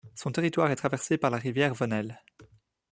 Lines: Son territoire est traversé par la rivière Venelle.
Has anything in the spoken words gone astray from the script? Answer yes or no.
no